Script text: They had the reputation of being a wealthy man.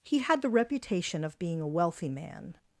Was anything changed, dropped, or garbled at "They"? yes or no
yes